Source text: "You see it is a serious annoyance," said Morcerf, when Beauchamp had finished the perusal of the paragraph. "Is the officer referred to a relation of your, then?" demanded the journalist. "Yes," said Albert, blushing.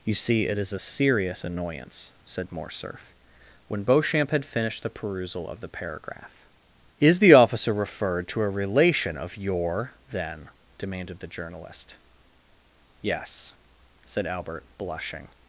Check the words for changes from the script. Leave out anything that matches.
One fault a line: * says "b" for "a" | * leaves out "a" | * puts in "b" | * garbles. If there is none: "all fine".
all fine